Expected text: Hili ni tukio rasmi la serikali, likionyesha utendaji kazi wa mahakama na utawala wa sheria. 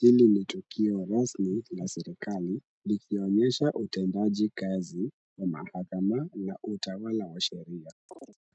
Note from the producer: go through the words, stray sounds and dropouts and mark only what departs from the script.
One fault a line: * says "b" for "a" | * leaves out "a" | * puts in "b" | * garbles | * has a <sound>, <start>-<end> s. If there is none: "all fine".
* has a chirp, 8.1-8.4 s